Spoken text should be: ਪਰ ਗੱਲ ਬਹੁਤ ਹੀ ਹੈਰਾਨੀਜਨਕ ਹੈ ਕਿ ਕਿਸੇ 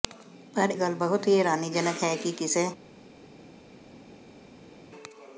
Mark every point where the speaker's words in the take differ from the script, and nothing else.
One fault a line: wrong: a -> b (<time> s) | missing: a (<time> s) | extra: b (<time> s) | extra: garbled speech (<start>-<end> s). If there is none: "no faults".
no faults